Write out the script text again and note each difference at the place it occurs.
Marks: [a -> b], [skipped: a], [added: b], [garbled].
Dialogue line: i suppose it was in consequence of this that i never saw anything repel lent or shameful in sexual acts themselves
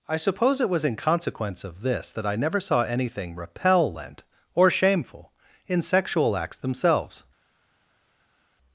i suppose it was in consequence of this that i never saw anything repel lent or shameful in sexual acts themselves